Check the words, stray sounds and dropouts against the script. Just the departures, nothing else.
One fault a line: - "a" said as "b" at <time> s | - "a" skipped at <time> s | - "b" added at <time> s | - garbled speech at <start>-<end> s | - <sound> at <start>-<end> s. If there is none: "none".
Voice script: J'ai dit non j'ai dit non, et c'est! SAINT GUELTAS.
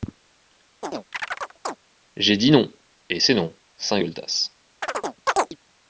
- chirp at 0.8-1.8 s
- "j'ai dit" said as "et c'est" at 3.1 s
- "et c'est" skipped at 3.5 s
- chirp at 4.8-5.6 s